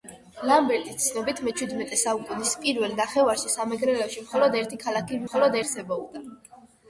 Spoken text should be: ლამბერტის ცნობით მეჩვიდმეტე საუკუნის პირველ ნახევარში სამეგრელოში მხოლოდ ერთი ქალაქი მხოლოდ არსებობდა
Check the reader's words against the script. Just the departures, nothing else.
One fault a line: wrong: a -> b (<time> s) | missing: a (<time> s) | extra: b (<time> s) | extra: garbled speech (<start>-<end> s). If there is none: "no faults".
no faults